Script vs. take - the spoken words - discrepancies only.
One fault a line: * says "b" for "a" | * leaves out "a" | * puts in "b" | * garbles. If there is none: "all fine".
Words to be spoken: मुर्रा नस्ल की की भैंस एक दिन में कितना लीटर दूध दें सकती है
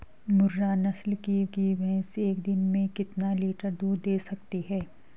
all fine